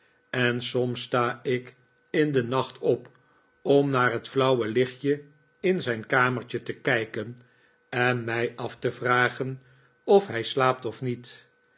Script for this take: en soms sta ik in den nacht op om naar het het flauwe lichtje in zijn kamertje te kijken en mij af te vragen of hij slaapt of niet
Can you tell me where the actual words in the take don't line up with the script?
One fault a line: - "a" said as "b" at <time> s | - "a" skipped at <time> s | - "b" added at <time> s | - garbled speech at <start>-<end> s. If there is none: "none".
- "het" skipped at 4.3 s